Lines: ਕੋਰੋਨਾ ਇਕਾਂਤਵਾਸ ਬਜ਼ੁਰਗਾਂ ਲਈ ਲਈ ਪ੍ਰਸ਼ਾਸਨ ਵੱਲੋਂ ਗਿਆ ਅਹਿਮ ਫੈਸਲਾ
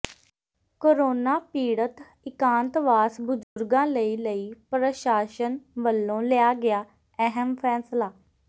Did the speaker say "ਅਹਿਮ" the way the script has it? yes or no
yes